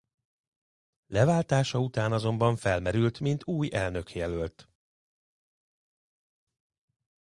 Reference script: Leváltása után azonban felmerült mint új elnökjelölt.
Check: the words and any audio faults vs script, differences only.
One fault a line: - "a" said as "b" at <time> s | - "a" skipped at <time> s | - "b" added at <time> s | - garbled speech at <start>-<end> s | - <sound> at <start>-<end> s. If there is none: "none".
none